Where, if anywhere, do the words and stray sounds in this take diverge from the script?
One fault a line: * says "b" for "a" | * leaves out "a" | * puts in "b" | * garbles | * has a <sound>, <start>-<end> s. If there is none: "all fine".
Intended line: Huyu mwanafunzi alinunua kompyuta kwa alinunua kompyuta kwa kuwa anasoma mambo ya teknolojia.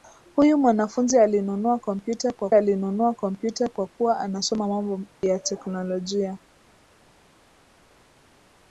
all fine